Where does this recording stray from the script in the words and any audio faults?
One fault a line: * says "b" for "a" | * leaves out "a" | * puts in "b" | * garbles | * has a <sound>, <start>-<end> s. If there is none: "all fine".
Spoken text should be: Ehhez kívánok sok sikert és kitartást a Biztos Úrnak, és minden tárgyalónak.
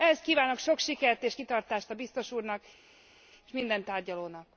all fine